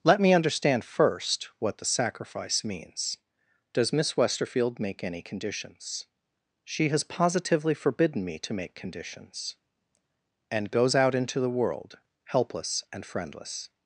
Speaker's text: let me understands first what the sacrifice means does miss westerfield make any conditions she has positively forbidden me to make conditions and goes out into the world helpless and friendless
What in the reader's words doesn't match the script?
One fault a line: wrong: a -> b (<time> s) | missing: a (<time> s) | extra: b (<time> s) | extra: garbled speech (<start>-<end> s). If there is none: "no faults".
wrong: understands -> understand (0.3 s)